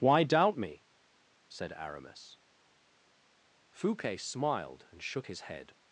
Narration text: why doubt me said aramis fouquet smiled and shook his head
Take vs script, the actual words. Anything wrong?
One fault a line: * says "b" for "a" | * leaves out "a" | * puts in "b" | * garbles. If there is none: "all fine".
all fine